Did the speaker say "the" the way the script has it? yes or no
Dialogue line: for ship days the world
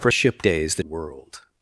yes